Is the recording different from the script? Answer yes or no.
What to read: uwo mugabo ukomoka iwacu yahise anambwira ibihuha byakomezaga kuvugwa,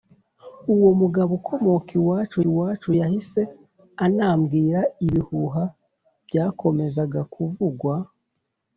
yes